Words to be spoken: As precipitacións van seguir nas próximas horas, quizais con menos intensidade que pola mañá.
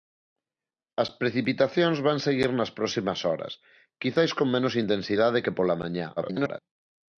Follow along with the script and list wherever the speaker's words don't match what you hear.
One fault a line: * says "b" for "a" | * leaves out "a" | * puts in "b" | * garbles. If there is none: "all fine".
* garbles